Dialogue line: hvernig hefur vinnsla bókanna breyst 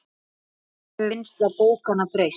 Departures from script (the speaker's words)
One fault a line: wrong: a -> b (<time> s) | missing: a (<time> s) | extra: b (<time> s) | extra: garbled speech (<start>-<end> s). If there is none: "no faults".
no faults